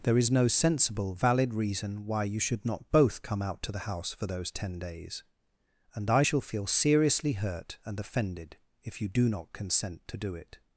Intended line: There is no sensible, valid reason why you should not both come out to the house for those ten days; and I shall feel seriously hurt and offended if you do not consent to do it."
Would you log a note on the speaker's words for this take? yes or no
no